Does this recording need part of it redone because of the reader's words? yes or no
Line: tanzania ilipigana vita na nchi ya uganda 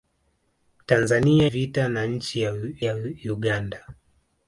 yes